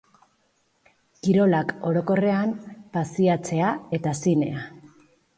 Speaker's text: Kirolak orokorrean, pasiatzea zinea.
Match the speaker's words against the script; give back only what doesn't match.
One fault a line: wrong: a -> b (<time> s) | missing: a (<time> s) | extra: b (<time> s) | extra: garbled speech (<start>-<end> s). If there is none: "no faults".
extra: eta (4.0 s)